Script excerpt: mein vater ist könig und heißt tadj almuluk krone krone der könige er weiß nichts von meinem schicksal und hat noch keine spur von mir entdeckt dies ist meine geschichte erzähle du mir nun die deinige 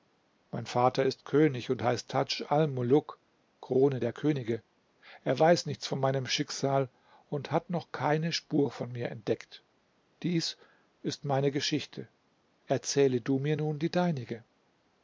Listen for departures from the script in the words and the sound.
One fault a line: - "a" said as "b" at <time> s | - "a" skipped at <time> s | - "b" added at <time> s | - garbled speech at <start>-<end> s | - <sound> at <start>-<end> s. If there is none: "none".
- "krone" skipped at 4.0 s